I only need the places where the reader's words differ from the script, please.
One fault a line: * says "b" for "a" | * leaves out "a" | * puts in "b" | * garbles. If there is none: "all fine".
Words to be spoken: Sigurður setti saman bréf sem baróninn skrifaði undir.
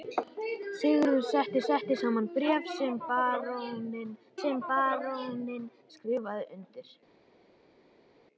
* puts in "setti"
* puts in "sem baróninn"